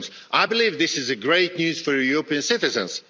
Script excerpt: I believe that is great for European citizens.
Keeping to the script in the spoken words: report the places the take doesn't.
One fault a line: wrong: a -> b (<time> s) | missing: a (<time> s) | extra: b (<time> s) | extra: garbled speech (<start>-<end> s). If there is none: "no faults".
wrong: that -> this (0.8 s)
extra: news (1.6 s)